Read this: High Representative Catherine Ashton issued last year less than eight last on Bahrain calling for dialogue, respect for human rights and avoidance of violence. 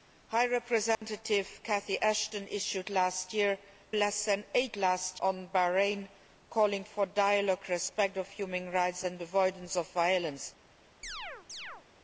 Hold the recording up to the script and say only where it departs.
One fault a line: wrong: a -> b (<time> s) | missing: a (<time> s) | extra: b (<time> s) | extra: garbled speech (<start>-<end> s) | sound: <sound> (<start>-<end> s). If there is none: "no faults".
sound: dropout (0.9-1.0 s)
sound: chirp (11.0-11.9 s)